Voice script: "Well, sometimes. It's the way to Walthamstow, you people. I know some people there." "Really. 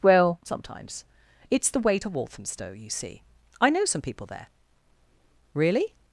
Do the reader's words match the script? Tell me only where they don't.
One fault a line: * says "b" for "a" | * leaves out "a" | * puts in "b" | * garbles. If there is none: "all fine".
* says "see" for "people"